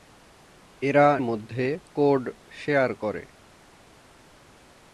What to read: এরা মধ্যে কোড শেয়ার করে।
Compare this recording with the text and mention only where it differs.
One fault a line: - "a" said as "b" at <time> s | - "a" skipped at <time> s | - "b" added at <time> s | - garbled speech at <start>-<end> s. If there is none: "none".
none